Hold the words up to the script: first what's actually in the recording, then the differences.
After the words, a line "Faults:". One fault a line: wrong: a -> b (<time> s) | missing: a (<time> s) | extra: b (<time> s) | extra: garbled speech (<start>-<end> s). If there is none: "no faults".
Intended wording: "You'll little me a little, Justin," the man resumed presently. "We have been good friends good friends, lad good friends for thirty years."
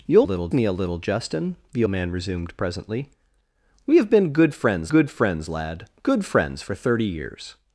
"You'll little me a little, Justin," the man resumed presently. "We have been good friends good friends, lad good friends for thirty years."
Faults:
no faults